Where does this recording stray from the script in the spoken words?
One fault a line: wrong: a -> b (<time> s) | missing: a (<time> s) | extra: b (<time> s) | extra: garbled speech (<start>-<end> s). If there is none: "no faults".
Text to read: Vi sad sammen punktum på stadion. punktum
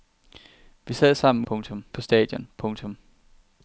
no faults